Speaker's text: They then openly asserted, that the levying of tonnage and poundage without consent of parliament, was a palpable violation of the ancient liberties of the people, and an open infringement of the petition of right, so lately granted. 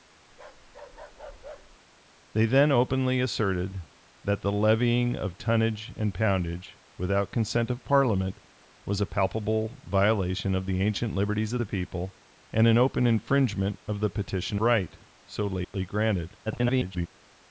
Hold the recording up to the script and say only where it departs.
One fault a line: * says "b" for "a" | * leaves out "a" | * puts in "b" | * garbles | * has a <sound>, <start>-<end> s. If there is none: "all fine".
* has a bark, 0.3-1.8 s
* leaves out "of"
* has a dropout, 15.6-15.7 s
* garbles